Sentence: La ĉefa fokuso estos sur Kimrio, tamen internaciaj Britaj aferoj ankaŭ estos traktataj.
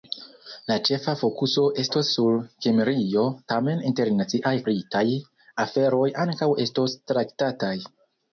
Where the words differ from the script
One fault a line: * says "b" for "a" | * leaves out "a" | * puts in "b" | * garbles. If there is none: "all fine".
all fine